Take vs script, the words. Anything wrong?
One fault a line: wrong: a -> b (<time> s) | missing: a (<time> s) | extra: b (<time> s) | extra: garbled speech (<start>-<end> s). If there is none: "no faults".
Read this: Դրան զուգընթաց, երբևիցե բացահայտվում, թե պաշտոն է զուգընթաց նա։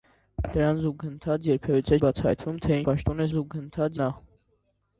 no faults